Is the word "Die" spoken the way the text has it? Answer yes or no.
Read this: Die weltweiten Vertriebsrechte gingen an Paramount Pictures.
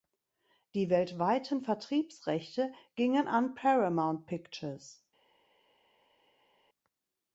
yes